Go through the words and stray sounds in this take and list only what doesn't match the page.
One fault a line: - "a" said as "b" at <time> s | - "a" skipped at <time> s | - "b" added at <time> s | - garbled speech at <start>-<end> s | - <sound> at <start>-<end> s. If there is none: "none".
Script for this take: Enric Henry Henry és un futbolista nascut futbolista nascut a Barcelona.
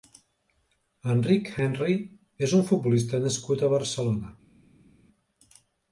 - "Henry" skipped at 2.0 s
- "futbolista nascut" skipped at 3.7 s